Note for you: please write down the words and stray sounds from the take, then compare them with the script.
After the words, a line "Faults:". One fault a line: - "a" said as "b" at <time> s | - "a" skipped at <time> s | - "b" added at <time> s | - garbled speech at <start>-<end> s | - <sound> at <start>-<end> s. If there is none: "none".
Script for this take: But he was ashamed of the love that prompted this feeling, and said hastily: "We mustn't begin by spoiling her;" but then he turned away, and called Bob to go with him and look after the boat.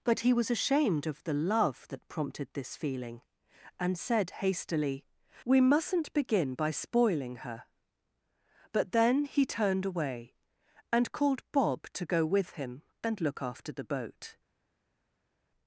But he was ashamed of the love that prompted this feeling, and said hastily: "We mustn't begin by spoiling her;" but then he turned away, and called Bob to go with him and look after the boat.
Faults:
none